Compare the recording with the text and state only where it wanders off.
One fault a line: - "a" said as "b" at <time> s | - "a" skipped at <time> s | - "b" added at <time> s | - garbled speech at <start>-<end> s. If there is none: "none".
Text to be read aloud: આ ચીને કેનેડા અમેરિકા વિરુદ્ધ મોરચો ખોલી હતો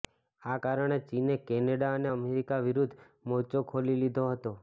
- "કારણે" added at 0.6 s
- "અને" added at 1.9 s
- "લીધો" added at 4.0 s